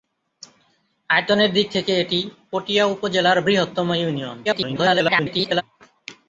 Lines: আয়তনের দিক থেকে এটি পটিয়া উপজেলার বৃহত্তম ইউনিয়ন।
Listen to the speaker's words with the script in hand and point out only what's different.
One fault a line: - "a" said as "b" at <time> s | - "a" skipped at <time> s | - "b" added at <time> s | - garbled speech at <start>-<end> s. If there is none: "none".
- garbled speech at 4.4-5.6 s